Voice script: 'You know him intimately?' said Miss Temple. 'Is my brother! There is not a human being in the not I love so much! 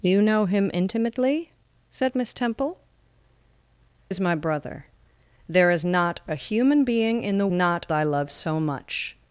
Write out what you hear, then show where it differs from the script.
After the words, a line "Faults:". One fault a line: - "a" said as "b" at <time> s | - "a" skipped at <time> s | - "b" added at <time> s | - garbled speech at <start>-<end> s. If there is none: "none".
'You know him intimately?' said Miss Temple. 'Is my brother! There is not a human being in the not I love so much!
Faults:
none